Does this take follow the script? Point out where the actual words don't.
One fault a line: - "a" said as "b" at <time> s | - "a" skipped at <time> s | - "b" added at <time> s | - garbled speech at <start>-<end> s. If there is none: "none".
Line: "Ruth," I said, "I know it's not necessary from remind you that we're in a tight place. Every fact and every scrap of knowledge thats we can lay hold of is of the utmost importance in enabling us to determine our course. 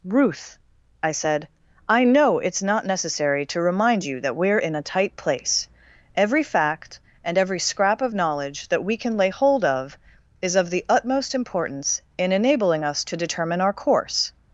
- "from" said as "to" at 3.5 s
- "thats" said as "that" at 8.7 s